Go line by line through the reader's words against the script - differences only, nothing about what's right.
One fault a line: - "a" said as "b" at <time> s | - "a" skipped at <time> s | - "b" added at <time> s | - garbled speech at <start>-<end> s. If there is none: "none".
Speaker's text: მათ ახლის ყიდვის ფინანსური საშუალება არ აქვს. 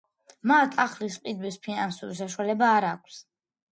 none